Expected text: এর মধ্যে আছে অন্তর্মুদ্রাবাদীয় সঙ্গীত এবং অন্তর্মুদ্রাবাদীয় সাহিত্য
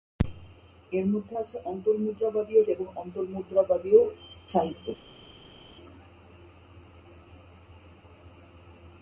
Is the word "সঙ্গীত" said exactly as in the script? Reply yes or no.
no